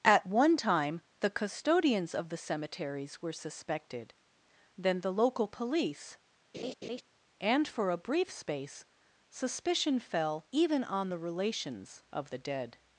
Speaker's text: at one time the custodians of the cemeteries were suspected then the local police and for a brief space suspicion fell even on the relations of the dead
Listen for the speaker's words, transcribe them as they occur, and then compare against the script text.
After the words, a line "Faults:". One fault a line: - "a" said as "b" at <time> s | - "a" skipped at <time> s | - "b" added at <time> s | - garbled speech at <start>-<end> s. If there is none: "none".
at one time the custodians of the cemeteries were suspected then the local police and for a brief space suspicion fell even on the relations of the dead
Faults:
none